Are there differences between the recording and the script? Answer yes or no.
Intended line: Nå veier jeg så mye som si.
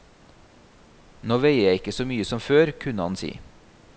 yes